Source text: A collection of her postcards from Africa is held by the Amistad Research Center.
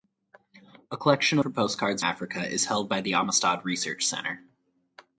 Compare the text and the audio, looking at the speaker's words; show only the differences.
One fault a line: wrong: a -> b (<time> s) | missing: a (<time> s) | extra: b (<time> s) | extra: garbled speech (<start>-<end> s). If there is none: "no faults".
missing: of (1.4 s)
missing: from (2.0 s)